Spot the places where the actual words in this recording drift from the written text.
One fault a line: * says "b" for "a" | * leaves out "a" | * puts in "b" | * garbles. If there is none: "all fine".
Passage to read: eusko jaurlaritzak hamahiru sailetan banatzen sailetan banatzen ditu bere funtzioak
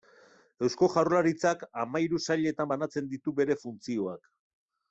* leaves out "sailetan banatzen"